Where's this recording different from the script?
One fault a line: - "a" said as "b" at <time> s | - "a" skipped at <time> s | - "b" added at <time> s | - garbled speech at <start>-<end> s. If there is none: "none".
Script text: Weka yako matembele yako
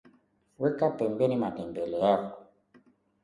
- "yako" said as "pembeni" at 1.0 s